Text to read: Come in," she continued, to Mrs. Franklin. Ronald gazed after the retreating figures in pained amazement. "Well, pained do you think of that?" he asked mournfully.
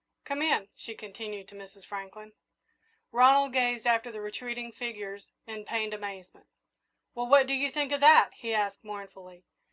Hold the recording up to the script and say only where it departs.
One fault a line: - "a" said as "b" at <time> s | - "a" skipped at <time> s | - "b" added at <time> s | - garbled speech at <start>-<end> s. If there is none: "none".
- "pained" said as "what" at 7.3 s